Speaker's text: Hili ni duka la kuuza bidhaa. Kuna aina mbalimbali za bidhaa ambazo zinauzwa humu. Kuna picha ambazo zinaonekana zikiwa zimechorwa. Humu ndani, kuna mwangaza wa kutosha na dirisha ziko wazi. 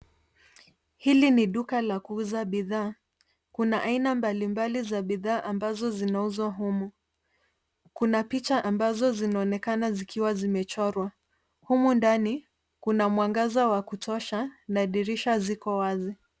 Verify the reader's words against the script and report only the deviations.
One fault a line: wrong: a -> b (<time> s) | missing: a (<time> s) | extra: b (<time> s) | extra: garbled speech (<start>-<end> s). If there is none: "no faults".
no faults